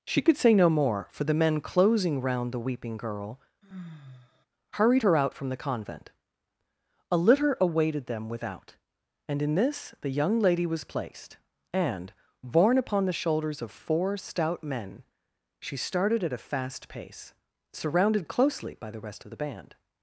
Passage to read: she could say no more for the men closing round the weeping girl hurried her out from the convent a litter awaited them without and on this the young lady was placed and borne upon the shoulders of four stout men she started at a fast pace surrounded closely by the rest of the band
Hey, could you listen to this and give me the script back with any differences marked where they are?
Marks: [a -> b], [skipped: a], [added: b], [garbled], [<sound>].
she could say no more for the men closing round the weeping girl [sigh] hurried her out from the convent a litter awaited them without and [on -> in] this the young lady was placed and borne upon the shoulders of four stout men she started at a fast pace surrounded closely by the rest of the band